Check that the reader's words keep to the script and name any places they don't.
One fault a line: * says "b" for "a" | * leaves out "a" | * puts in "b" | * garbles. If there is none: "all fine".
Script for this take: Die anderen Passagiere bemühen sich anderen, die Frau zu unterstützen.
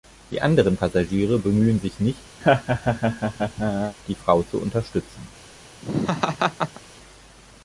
* says "nicht" for "anderen"